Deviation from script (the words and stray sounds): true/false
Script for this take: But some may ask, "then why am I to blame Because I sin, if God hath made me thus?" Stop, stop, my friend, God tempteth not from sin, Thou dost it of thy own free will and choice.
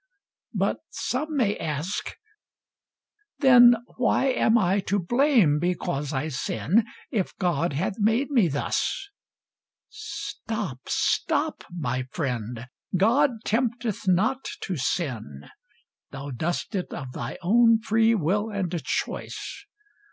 true